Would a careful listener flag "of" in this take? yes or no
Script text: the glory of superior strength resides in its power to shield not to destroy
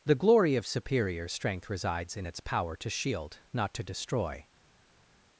no